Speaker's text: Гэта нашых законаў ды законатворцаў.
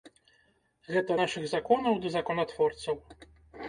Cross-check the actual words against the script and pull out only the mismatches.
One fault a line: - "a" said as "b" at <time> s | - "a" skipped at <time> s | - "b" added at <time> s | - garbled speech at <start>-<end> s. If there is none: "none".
none